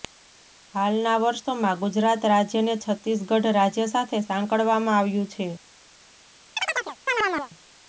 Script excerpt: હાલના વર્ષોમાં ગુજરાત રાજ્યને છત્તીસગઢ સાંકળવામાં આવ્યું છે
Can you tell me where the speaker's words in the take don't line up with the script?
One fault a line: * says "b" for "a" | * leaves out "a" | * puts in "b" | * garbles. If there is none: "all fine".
* puts in "રાજ્ય સાથે"